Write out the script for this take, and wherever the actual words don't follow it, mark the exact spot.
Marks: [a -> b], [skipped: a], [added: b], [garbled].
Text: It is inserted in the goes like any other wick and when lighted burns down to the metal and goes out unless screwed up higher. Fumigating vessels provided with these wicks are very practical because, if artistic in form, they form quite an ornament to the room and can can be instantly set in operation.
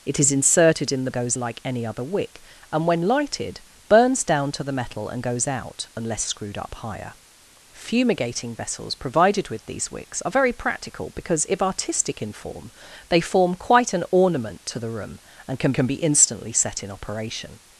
It is inserted in the goes like any other wick and when lighted burns down to the metal and goes out unless screwed up higher. Fumigating vessels provided with these wicks are very practical because, if artistic in form, they form quite an ornament to the room and can can be instantly set in operation.